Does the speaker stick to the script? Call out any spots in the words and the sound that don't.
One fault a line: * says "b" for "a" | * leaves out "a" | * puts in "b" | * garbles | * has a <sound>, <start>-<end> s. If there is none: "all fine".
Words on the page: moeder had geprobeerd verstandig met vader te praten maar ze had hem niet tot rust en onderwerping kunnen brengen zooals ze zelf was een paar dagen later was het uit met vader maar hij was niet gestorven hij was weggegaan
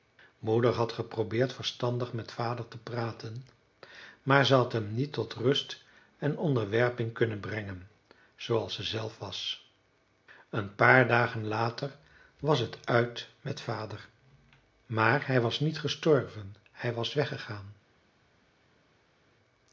all fine